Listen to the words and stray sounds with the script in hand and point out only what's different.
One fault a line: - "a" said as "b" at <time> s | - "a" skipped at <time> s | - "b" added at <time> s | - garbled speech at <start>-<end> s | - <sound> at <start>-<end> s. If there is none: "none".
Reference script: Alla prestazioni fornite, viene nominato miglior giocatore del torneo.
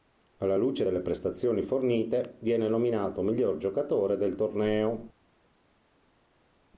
- "luce delle" added at 0.6 s